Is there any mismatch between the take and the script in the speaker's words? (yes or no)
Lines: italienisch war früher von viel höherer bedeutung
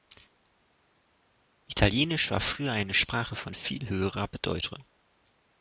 yes